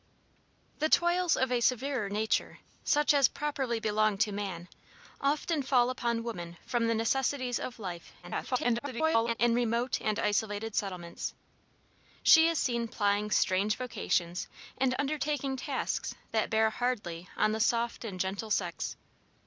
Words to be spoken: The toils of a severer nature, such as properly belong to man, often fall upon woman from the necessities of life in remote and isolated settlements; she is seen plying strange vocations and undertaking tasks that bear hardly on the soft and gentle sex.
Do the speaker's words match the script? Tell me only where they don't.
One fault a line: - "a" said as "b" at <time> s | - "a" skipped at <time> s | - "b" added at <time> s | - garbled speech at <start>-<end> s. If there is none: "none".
- garbled speech at 8.2-9.3 s